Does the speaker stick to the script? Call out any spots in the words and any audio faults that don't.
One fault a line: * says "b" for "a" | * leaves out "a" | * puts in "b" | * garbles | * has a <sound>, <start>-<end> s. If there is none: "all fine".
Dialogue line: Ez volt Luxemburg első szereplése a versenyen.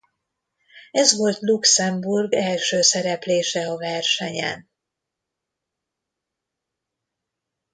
all fine